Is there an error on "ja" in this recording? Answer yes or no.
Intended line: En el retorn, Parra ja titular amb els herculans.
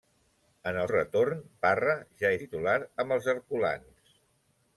no